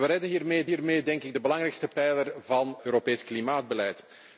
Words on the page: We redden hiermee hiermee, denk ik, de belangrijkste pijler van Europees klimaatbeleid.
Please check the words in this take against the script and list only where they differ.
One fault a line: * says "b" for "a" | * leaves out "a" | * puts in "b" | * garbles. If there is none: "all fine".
all fine